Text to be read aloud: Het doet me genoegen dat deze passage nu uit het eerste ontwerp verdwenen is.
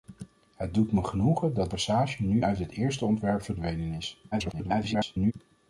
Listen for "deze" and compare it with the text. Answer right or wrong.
wrong